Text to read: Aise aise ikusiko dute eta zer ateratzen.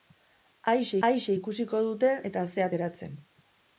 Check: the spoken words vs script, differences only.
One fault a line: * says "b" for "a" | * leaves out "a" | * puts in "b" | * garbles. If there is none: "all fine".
all fine